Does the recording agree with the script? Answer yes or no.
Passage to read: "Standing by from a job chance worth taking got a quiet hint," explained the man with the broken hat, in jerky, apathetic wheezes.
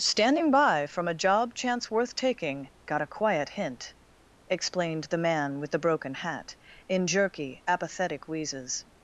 yes